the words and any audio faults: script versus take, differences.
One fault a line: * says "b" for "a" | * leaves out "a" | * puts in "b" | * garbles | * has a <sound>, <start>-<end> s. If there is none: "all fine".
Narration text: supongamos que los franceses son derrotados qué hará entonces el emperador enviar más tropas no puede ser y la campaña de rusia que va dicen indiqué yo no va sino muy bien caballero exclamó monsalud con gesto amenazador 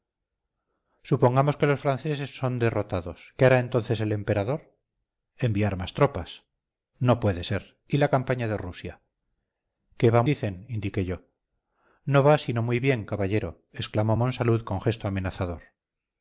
all fine